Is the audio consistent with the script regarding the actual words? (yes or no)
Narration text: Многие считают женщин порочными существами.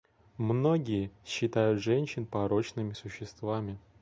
yes